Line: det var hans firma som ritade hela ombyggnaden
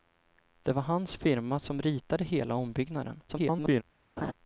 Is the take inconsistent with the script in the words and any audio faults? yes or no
yes